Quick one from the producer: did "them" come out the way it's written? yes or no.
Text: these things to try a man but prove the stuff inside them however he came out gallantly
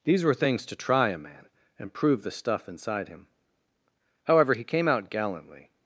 no